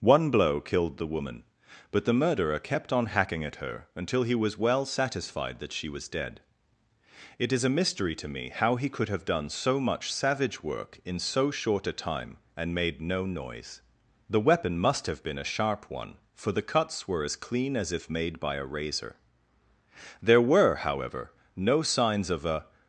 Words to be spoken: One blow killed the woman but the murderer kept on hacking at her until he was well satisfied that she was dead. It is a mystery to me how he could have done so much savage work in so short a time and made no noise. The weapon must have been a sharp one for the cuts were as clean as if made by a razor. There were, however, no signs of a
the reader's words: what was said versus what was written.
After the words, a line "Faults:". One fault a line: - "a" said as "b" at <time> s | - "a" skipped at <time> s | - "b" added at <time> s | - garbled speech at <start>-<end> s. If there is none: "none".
One blow killed the woman but the murderer kept on hacking at her until he was well satisfied that she was dead. It is a mystery to me how he could have done so much savage work in so short a time and made no noise. The weapon must have been a sharp one for the cuts were as clean as if made by a razor. There were, however, no signs of a
Faults:
none